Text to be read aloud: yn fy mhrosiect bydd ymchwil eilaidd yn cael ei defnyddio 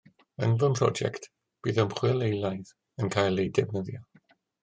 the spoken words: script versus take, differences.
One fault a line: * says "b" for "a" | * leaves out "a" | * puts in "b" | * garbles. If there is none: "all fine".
all fine